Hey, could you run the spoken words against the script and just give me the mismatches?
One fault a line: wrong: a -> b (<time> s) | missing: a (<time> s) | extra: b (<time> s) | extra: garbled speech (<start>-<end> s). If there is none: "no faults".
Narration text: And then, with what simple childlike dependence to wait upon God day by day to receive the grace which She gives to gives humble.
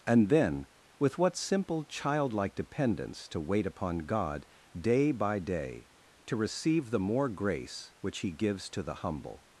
extra: more (7.0 s)
wrong: She -> He (8.2 s)
wrong: gives -> the (8.8 s)